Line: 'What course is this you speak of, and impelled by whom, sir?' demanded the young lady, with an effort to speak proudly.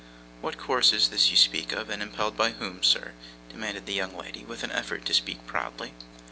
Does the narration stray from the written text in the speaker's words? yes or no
no